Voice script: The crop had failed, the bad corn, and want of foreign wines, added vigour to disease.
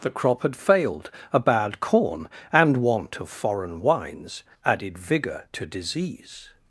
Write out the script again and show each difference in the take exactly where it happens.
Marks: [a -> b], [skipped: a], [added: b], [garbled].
The crop had failed, [the -> a] bad corn, and want of foreign wines, added vigour to disease.